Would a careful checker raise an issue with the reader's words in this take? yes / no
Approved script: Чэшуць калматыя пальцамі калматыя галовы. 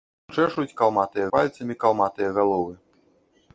no